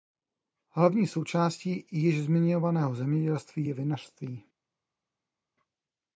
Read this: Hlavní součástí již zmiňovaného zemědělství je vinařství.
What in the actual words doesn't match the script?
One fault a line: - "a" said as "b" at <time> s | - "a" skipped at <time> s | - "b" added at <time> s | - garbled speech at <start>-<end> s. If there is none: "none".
none